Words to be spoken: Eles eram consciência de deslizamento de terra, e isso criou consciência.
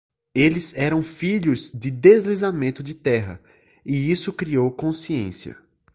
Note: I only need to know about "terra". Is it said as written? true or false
true